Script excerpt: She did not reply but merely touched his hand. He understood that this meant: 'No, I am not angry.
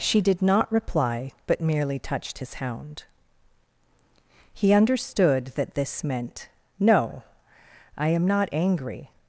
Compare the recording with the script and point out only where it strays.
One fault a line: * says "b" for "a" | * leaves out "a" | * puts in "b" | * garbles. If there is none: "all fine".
* says "hound" for "hand"